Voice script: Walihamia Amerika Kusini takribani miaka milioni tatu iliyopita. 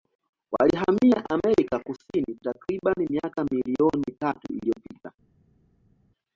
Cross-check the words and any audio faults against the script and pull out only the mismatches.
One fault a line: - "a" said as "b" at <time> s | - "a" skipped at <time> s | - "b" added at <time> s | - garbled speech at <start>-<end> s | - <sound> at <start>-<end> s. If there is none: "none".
none